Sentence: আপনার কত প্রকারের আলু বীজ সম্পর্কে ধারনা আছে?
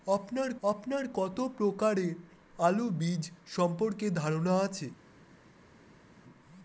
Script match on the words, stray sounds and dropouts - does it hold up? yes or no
no